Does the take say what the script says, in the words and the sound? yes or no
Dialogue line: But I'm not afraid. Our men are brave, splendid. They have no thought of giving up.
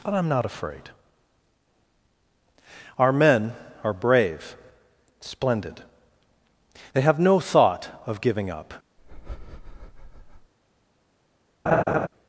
no